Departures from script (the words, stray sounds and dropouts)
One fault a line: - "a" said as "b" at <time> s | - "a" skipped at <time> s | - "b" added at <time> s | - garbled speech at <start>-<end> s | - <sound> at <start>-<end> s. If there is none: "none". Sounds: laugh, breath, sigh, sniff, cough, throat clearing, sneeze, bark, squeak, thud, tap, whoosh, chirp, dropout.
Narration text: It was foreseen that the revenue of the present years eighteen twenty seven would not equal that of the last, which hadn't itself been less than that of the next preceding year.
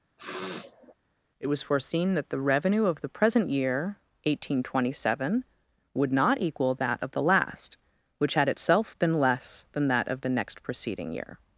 - sniff at 0.2-0.9 s
- "years" said as "year" at 3.5 s
- "hadn't" said as "had" at 8.3 s